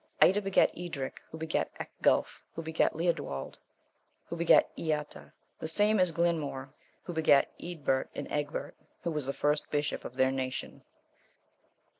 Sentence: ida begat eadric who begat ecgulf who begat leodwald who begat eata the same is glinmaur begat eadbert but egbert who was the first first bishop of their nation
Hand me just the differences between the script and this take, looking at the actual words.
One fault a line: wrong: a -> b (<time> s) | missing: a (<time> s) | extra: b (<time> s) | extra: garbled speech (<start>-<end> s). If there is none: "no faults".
extra: who (7.0 s)
wrong: but -> and (8.1 s)
missing: first (9.7 s)